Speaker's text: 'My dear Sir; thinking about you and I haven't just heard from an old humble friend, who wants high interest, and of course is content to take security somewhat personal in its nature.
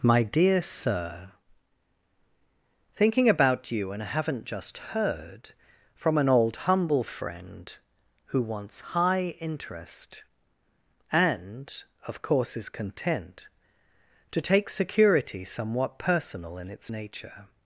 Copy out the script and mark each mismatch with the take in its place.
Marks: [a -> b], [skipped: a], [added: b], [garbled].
'My dear Sir; thinking about you and I haven't just heard from an old humble friend, who wants high interest, and of course is content to take security somewhat personal in its nature.